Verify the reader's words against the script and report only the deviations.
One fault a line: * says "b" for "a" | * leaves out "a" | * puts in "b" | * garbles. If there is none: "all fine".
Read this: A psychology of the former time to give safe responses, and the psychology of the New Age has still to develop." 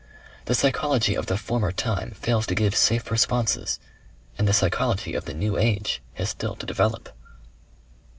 * says "The" for "A"
* puts in "fails"